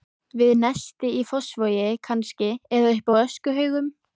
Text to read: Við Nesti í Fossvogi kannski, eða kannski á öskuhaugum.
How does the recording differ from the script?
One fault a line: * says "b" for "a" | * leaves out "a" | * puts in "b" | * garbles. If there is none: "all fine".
* says "uppi" for "kannski"